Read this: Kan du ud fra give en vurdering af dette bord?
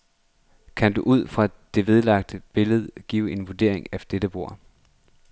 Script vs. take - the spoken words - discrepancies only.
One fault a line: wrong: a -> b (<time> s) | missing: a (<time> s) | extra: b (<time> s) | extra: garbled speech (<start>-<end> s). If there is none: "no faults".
extra: det vedlagte billede (1.7 s)